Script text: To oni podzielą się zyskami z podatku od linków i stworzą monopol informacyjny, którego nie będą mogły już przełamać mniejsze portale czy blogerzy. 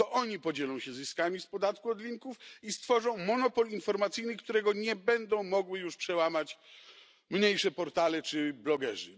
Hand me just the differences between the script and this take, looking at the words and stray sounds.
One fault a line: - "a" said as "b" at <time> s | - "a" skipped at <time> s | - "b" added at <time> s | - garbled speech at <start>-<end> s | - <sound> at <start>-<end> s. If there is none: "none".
none